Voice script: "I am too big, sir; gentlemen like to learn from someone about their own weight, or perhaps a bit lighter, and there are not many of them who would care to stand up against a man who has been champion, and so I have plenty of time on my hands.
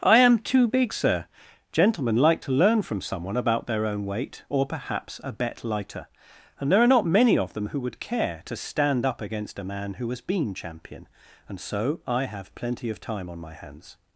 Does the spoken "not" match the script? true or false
true